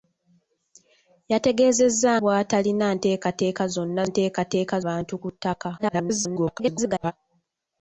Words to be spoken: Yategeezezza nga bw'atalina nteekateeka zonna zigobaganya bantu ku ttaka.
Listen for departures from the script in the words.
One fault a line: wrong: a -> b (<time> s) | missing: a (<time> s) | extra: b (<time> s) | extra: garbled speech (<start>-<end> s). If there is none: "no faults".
missing: nga (2.1 s)
wrong: zigobaganya -> nteekateeka (4.1 s)
extra: garbled speech (5.8-7.1 s)